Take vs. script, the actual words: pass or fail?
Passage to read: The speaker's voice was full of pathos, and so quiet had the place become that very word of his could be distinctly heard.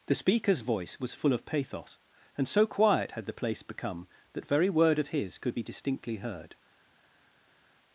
pass